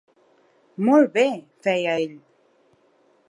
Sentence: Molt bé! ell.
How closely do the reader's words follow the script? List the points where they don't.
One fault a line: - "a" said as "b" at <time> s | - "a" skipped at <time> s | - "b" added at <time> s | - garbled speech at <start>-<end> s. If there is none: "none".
- "feia" added at 1.7 s